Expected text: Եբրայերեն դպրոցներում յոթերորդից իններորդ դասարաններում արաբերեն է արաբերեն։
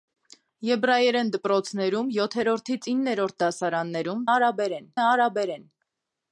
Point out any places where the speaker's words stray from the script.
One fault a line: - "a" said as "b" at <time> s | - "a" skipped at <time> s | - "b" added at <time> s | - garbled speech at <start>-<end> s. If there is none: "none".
none